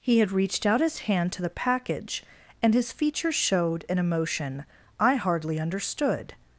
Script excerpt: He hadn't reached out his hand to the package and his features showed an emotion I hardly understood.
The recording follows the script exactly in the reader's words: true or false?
false